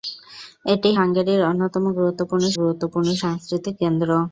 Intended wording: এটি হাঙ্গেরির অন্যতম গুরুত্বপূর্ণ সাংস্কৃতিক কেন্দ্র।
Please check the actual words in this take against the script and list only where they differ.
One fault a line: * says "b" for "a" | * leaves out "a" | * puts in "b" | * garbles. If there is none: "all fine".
* puts in "গুরুত্বপূর্ণ"